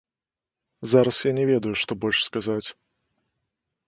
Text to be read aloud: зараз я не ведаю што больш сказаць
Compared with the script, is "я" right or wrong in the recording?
right